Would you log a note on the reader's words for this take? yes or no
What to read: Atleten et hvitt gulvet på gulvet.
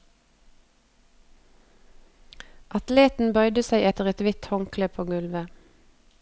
yes